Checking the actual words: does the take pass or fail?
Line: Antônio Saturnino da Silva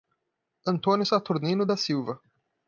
pass